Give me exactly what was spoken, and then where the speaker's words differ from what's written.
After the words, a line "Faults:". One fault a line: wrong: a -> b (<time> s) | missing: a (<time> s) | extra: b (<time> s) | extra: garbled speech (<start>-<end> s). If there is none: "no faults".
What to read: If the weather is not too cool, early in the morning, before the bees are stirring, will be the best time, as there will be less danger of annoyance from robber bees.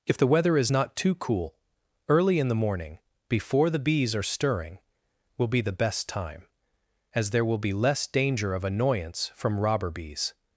If the weather is not too cool, early in the morning, before the bees are stirring, will be the best time, as there will be less danger of annoyance from robber bees.
Faults:
no faults